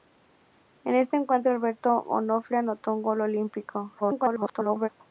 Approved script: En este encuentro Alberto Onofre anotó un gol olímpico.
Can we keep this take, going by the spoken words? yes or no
no